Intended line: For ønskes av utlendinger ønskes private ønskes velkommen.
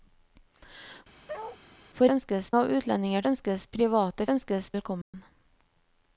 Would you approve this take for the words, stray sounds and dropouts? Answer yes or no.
no